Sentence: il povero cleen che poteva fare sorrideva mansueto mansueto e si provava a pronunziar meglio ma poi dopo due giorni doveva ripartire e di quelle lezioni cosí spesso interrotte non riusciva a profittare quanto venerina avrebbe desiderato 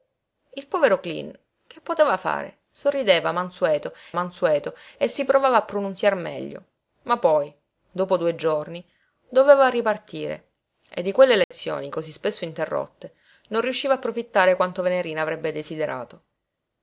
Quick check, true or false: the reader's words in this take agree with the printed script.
true